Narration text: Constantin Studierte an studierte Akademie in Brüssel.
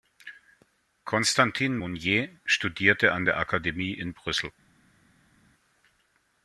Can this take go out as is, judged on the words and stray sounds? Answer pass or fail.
fail